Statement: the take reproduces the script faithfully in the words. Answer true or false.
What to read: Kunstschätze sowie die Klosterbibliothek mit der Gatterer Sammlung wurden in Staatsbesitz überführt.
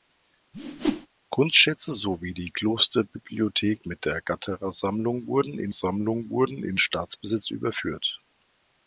false